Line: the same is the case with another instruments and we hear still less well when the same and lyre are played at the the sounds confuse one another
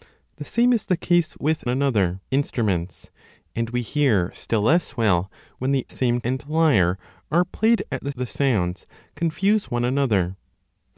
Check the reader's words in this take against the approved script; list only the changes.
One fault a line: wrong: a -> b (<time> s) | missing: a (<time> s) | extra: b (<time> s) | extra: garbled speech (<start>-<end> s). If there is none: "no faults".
no faults